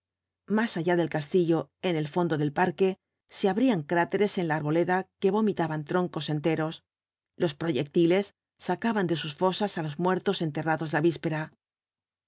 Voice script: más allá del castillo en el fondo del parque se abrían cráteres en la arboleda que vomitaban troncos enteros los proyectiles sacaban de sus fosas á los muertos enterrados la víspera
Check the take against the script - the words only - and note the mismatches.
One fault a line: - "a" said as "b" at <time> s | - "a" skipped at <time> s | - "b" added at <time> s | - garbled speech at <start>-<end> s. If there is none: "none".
none